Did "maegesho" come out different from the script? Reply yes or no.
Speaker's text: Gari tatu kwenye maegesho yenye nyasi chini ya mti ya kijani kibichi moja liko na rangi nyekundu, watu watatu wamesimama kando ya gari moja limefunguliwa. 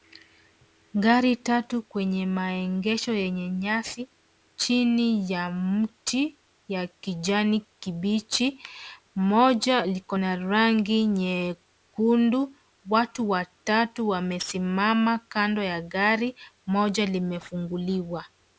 no